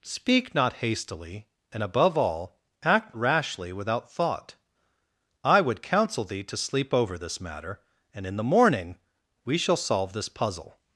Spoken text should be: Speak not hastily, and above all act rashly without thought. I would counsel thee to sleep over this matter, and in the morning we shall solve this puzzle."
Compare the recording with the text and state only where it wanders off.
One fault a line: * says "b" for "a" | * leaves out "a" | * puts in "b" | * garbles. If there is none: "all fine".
all fine